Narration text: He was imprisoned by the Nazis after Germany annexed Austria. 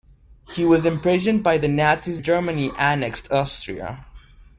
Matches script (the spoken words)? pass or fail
fail